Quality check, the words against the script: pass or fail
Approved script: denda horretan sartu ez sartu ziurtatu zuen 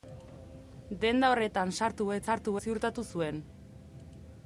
pass